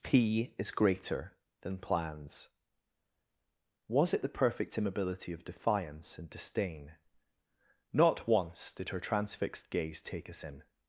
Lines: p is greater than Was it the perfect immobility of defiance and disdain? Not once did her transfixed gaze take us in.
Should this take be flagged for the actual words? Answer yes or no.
yes